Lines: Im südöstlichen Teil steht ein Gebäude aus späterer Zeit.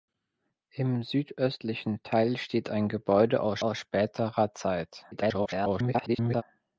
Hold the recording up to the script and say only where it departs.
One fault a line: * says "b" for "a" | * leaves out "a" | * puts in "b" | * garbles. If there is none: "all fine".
* puts in "aus"
* garbles